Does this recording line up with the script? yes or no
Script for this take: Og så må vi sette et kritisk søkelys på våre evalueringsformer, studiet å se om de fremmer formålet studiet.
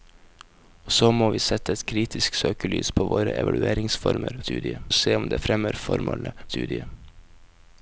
yes